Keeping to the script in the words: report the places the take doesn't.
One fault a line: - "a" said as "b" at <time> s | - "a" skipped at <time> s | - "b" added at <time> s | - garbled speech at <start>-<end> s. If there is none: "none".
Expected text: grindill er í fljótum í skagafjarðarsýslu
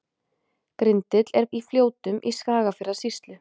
none